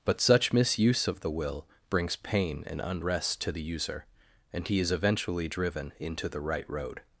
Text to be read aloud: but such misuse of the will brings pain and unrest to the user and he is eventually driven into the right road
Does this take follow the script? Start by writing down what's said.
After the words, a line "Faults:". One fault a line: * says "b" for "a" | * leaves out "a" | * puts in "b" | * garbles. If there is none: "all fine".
but such misuse of the will brings pain and unrest to the user and he is eventually driven into the right road
Faults:
all fine